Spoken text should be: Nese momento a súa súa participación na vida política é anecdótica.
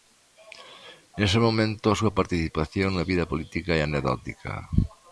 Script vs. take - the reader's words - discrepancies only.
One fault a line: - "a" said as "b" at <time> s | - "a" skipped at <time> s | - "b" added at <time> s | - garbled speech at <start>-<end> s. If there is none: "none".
- "súa" skipped at 2.1 s